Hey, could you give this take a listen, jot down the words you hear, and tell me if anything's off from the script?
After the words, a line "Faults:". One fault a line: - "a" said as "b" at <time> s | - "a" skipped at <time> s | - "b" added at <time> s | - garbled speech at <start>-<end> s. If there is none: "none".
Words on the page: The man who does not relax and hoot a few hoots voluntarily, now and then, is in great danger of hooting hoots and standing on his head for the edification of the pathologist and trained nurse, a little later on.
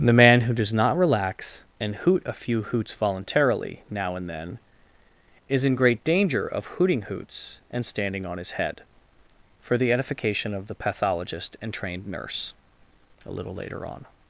The man who does not relax and hoot a few hoots voluntarily, now and then, is in great danger of hooting hoots and standing on his head for the edification of the pathologist and trained nurse, a little later on.
Faults:
none